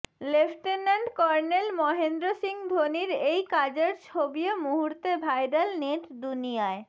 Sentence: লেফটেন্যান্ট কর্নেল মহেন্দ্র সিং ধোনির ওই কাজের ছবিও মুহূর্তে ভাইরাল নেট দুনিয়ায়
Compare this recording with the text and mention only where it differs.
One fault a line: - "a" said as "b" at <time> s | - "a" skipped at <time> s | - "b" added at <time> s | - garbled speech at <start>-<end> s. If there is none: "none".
- "ওই" said as "এই" at 3.2 s